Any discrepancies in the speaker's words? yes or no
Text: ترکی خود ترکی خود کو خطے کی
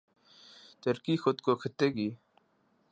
yes